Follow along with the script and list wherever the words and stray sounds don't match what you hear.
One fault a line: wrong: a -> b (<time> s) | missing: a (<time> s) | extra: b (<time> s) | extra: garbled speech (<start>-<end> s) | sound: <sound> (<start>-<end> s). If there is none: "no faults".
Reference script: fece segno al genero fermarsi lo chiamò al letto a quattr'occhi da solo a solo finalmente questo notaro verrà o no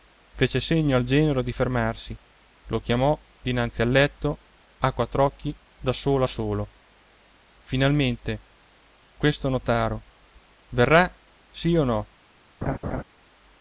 extra: di (1.4 s)
extra: dinanzi (3.4 s)
extra: sì (11.5 s)
sound: laugh (12.6-13.0 s)